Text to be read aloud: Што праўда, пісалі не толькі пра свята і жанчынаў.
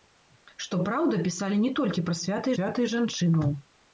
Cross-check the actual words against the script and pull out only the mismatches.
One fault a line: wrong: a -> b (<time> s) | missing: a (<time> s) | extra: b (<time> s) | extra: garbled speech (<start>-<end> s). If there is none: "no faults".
extra: свята (2.5 s)